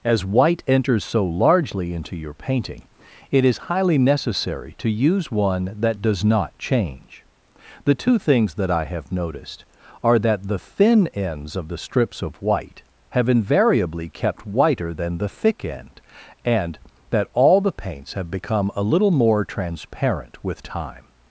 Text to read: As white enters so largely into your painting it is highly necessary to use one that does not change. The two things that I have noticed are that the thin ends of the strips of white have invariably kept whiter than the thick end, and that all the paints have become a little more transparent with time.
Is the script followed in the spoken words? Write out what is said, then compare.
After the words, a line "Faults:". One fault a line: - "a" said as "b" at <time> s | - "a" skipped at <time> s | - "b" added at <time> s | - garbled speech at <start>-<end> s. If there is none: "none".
As white enters so largely into your painting it is highly necessary to use one that does not change. The two things that I have noticed are that the thin ends of the strips of white have invariably kept whiter than the thick end, and that all the paints have become a little more transparent with time.
Faults:
none